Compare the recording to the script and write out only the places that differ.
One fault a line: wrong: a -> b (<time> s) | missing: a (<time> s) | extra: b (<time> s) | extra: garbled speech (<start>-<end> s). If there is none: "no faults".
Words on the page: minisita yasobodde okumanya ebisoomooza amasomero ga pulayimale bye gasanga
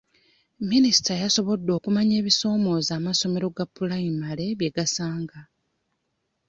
no faults